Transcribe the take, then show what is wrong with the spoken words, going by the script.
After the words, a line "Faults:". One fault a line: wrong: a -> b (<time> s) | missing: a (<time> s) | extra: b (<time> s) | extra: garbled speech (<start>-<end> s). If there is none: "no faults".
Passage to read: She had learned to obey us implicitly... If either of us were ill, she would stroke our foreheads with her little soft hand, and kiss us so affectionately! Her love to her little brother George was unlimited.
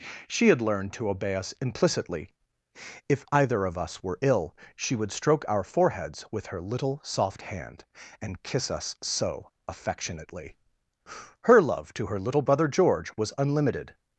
She had learned to obey us implicitly... If either of us were ill, she would stroke our foreheads with her little soft hand, and kiss us so affectionately! Her love to her little brother George was unlimited.
Faults:
no faults